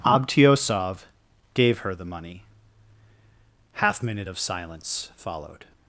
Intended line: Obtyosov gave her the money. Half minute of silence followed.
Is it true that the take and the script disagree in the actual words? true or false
false